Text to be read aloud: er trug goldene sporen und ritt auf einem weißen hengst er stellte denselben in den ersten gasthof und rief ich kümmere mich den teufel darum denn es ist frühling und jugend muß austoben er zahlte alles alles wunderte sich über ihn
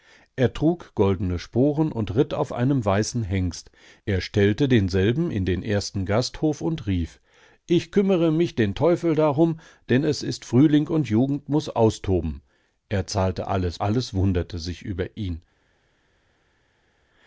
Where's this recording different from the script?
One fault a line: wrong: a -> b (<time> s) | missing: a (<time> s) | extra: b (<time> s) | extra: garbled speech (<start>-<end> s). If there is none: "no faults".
no faults